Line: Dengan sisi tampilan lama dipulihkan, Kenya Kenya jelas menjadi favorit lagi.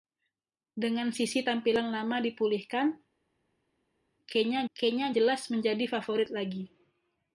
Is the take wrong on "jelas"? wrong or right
right